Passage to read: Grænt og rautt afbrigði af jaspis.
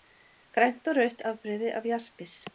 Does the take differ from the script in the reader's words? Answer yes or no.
no